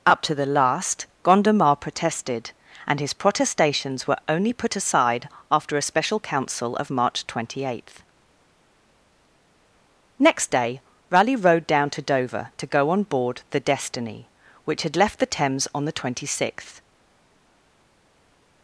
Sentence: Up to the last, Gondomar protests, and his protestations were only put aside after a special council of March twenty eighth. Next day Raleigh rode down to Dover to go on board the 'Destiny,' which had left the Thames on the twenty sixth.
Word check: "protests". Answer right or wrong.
wrong